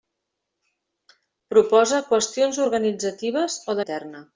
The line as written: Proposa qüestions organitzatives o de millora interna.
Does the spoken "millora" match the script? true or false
false